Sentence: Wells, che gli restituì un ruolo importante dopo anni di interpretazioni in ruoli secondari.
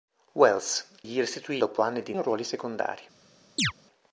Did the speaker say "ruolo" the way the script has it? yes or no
no